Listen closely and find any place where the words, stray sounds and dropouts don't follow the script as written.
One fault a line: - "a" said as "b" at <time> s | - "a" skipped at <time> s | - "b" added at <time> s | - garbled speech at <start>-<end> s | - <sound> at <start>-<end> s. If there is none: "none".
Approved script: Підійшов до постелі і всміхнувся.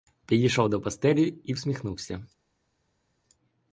none